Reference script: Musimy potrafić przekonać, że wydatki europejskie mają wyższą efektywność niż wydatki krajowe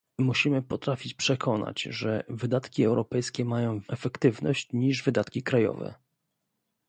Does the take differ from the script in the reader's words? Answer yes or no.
yes